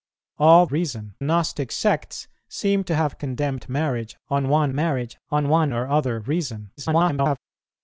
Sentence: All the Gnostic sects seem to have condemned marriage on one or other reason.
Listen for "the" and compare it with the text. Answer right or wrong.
wrong